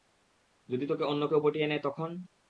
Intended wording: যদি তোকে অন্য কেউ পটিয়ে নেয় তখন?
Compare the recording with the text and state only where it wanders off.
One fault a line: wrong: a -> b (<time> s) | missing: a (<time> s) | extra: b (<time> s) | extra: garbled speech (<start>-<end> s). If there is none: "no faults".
no faults